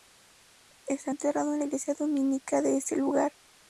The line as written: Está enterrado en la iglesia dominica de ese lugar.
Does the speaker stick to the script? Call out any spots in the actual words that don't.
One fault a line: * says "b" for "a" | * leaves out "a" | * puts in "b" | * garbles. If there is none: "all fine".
all fine